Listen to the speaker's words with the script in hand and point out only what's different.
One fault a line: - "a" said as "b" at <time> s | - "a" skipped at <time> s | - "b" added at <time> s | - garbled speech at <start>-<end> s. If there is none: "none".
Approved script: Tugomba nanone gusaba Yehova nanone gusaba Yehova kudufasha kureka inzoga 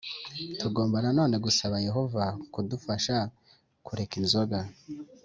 - "nanone gusaba Yehova" skipped at 2.2 s